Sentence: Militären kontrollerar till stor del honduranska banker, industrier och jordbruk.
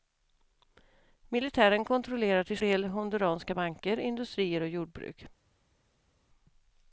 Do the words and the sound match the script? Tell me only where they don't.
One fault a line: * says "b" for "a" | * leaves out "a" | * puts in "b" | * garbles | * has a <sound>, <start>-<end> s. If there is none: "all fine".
* leaves out "stor"